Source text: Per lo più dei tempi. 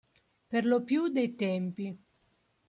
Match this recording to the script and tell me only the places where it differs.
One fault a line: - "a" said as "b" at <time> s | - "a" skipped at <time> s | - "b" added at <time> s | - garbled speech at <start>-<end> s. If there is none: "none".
none